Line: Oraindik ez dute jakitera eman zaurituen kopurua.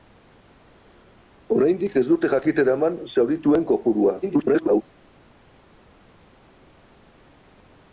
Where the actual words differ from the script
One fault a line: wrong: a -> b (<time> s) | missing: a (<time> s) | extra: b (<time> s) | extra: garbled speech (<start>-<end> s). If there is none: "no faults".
extra: garbled speech (4.2-4.8 s)